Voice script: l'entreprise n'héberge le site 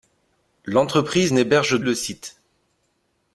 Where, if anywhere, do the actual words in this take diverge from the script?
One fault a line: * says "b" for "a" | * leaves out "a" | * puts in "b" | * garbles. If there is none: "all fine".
all fine